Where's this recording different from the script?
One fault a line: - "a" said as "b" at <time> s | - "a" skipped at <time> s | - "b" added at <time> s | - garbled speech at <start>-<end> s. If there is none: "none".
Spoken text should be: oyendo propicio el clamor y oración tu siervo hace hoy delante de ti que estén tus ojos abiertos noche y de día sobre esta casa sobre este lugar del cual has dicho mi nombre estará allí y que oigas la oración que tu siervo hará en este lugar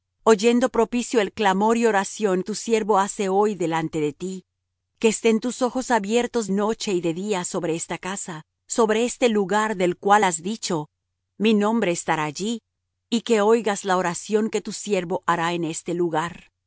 none